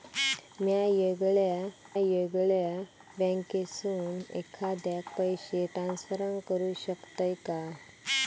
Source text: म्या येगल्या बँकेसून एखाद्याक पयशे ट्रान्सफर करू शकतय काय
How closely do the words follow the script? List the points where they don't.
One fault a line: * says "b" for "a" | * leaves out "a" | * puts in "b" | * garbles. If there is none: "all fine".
* puts in "येगल्या"